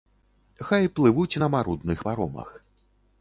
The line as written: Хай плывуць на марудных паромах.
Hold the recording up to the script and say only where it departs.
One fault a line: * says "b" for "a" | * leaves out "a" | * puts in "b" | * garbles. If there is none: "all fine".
all fine